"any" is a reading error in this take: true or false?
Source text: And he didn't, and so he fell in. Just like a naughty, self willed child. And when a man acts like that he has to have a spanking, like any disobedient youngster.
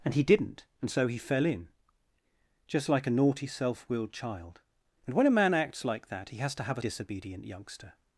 true